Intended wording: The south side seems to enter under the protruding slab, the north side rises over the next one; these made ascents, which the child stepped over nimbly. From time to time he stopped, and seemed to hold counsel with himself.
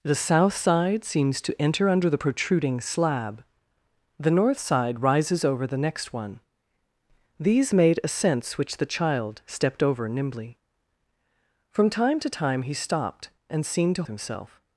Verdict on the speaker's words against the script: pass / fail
fail